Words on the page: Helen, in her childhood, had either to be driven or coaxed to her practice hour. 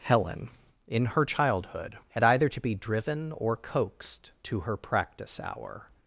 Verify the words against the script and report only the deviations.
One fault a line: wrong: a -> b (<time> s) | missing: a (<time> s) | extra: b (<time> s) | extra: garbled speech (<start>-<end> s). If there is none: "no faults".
no faults